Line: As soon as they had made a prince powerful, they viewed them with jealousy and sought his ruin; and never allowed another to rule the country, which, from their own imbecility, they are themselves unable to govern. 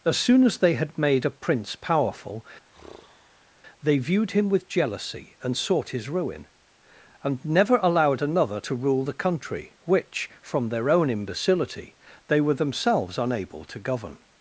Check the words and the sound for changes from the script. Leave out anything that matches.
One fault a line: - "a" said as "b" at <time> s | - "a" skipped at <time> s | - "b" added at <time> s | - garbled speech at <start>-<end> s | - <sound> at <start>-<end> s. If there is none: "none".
- sigh at 2.7-3.5 s
- "them" said as "him" at 4.3 s
- "are" said as "were" at 12.4 s